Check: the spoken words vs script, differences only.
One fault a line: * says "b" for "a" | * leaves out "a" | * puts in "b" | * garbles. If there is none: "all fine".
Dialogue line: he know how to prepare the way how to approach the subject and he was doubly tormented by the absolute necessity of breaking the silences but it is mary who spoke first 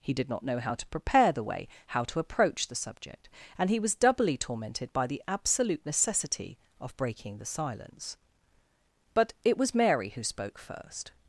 * puts in "did not"
* says "silence" for "silences"
* says "was" for "is"